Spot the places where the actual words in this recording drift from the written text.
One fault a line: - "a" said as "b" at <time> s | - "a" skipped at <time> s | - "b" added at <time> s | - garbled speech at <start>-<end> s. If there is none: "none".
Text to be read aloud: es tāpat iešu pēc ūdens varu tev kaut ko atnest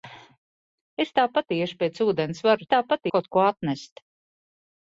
- "tev" said as "tāpat" at 2.7 s